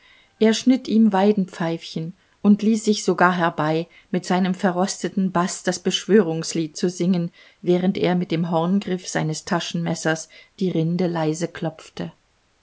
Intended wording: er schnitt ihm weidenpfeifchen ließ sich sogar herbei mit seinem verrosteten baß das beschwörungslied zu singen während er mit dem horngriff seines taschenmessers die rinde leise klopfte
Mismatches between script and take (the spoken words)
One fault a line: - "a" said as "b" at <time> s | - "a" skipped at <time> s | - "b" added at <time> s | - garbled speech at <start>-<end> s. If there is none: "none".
- "und" added at 2.4 s